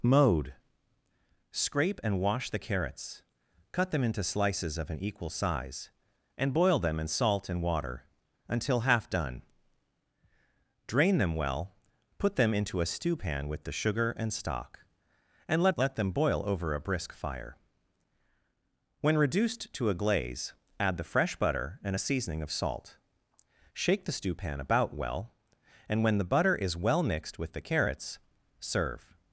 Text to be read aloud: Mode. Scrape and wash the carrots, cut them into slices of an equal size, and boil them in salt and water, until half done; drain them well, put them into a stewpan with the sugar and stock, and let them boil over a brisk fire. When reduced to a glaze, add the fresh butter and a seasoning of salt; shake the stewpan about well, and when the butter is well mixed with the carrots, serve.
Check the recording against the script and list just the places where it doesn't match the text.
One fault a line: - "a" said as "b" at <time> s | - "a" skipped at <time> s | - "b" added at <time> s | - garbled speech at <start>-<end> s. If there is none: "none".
- "let" added at 15.8 s